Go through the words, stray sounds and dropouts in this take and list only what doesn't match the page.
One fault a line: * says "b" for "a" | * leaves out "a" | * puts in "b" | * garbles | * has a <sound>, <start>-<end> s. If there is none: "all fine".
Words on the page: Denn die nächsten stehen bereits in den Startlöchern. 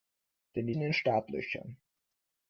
* leaves out "nächsten stehen bereits"